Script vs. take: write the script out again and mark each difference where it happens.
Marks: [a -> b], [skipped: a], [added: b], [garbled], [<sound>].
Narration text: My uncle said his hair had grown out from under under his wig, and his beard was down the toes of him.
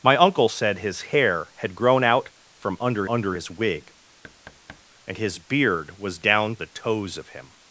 My uncle said his hair had grown out from under under his wig, [thud] and his beard was down the toes of him.